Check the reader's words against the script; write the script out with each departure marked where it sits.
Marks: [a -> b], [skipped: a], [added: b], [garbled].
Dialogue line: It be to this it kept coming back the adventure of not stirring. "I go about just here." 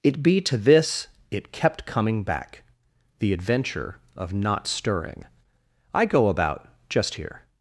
It be to this it kept coming back the adventure of not stirring. "I go about just here."